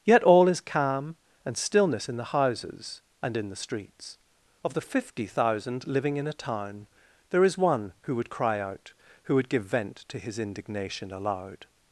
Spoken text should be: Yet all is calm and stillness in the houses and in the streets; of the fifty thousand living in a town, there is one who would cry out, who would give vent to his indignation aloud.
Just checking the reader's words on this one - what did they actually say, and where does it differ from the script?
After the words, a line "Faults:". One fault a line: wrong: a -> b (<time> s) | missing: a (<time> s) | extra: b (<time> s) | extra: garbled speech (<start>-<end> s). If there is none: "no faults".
Yet all is calm and stillness in the houses and in the streets; of the fifty thousand living in a town, there is one who would cry out, who would give vent to his indignation aloud.
Faults:
no faults